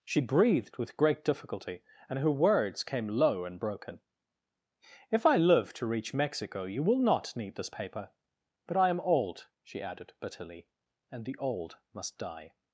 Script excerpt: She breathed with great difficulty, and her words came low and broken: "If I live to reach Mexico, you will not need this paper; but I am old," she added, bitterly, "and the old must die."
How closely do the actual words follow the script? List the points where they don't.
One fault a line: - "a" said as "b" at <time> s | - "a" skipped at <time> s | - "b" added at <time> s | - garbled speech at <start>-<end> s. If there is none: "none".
none